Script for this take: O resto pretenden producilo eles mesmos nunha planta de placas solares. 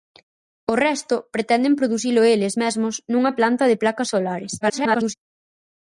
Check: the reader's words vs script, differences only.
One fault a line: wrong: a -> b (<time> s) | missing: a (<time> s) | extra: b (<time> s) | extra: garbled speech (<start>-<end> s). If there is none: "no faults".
extra: garbled speech (4.6-5.1 s)